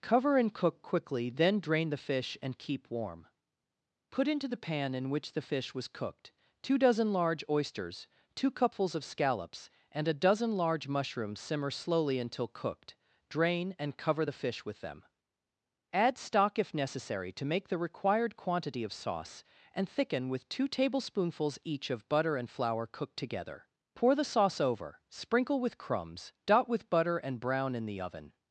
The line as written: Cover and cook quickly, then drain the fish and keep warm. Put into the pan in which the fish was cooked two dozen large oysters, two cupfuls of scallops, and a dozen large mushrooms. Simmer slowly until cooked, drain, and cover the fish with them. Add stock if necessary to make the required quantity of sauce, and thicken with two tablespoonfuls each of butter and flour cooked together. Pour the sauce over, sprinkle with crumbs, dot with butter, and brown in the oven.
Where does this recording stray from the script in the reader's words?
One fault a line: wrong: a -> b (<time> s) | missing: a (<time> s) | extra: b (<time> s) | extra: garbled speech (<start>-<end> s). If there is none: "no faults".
no faults